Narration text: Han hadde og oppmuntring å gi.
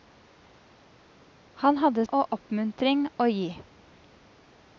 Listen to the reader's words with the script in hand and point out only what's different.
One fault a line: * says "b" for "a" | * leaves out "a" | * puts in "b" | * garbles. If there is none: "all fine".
all fine